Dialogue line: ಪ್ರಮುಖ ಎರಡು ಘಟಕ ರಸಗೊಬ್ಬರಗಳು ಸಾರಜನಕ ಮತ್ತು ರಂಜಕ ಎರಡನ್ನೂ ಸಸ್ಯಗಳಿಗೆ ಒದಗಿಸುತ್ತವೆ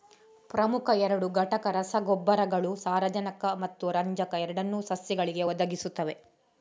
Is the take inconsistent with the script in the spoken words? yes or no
no